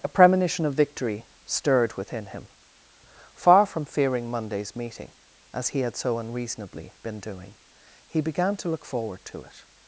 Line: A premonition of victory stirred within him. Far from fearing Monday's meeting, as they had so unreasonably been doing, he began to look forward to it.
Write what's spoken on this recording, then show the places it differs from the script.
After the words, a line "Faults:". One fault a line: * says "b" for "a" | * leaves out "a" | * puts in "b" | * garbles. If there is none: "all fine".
A premonition of victory stirred within him. Far from fearing Monday's meeting, as he had so unreasonably been doing, he began to look forward to it.
Faults:
* says "he" for "they"